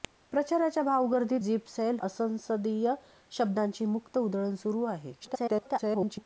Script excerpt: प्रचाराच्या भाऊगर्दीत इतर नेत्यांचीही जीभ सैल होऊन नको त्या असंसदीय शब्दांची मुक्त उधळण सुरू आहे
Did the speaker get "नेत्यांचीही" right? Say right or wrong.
wrong